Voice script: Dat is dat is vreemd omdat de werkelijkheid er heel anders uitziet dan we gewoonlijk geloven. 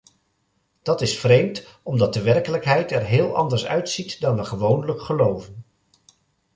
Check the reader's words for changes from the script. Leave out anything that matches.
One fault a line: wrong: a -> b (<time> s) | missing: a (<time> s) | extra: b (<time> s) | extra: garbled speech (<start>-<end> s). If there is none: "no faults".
missing: dat is (1.2 s)